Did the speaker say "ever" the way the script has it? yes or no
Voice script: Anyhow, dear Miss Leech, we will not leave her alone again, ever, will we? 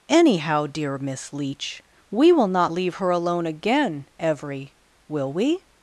no